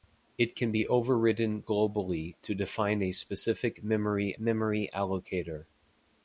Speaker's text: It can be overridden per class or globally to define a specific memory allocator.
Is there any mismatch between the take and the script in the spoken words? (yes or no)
yes